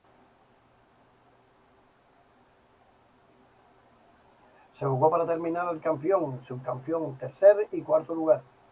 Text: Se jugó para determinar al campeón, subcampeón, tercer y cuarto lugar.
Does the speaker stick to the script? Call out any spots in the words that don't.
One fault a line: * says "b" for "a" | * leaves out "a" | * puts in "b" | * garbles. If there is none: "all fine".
all fine